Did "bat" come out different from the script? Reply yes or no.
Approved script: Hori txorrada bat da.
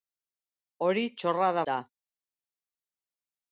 yes